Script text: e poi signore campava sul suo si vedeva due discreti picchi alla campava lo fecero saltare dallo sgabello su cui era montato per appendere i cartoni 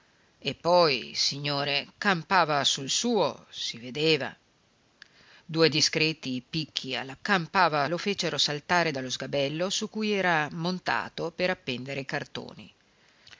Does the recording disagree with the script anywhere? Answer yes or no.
no